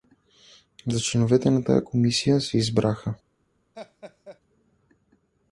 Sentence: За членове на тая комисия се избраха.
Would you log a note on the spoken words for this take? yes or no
no